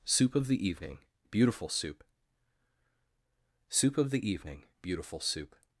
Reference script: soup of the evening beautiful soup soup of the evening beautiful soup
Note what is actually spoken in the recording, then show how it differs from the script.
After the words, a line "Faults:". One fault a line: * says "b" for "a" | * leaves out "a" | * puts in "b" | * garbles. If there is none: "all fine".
soup of the evening beautiful soup soup of the evening beautiful soup
Faults:
all fine